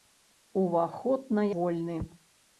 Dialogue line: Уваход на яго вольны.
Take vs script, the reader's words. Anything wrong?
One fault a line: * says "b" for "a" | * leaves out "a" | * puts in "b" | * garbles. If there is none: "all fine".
* leaves out "яго"